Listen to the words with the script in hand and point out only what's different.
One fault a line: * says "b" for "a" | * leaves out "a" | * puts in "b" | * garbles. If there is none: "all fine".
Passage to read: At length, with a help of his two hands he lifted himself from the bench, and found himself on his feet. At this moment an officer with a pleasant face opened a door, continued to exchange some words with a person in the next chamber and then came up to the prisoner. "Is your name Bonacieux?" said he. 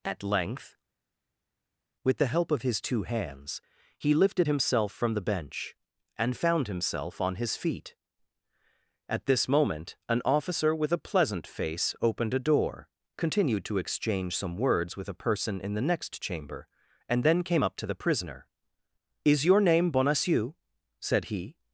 * says "the" for "a"